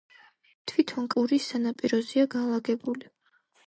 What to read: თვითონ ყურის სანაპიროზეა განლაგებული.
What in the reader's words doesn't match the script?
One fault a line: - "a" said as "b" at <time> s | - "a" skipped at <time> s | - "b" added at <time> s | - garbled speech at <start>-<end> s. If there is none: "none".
none